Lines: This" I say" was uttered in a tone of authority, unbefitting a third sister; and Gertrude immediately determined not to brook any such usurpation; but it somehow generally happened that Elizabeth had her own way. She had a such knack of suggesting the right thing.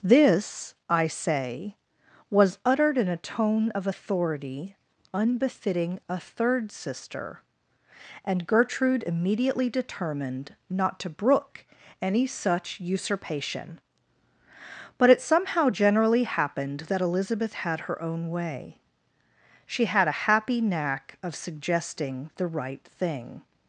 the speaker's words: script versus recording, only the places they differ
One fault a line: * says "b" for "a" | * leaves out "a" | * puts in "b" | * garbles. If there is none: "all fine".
* says "happy" for "such"